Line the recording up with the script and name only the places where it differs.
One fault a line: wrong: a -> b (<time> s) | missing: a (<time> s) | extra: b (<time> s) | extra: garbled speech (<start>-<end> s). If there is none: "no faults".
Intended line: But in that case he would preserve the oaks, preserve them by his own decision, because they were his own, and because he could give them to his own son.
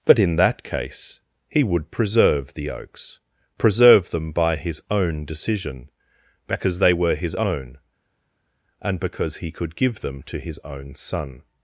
no faults